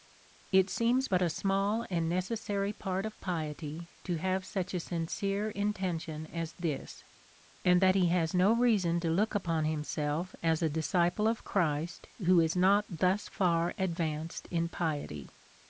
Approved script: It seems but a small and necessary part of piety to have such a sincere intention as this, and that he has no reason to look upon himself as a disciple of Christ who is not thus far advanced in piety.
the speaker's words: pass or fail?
pass